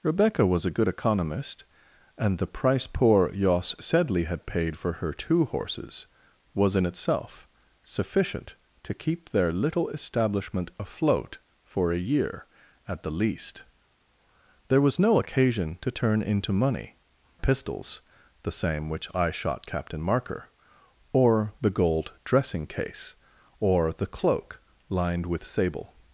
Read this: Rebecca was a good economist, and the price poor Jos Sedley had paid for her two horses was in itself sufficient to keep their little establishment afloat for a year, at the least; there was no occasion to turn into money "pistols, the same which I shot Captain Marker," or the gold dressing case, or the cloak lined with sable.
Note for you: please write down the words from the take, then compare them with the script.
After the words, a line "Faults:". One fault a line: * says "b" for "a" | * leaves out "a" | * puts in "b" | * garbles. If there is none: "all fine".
Rebecca was a good economist, and the price poor Jos Sedley had paid for her two horses was in itself sufficient to keep their little establishment afloat for a year, at the least; there was no occasion to turn into money "pistols, the same which I shot Captain Marker," or the gold dressing case, or the cloak lined with sable.
Faults:
all fine